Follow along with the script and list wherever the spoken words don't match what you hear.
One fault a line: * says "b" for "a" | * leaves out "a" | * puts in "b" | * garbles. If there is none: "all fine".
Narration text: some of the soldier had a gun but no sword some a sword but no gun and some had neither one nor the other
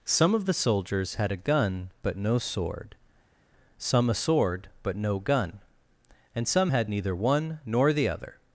* says "soldiers" for "soldier"